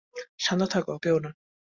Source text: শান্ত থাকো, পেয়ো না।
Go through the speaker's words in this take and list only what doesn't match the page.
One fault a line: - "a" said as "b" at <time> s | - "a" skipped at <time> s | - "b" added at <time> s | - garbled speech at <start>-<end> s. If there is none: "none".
none